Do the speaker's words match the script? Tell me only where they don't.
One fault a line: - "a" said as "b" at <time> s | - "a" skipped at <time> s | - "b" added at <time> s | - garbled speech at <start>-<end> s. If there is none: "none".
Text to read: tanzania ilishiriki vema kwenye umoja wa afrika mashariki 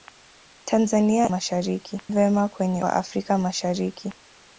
- "ilishiriki" said as "mashariki" at 1.3 s
- "umoja" skipped at 2.8 s